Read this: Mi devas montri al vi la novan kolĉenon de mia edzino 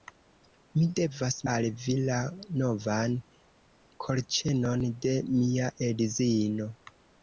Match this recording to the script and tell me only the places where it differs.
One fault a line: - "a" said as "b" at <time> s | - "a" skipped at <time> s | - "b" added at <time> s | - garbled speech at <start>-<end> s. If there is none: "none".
- "montri" skipped at 1.4 s